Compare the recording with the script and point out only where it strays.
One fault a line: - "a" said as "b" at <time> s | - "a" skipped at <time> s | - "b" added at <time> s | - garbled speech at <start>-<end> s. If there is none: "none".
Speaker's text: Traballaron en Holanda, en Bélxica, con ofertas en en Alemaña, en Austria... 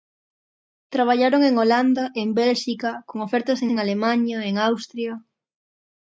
none